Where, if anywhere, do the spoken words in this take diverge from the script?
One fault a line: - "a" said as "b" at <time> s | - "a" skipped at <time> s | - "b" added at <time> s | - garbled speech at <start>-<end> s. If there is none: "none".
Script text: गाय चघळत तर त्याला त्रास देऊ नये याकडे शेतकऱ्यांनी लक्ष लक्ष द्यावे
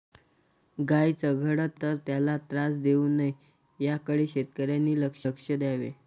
none